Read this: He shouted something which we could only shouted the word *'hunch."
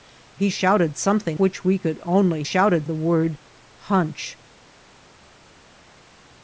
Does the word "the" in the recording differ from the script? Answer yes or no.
no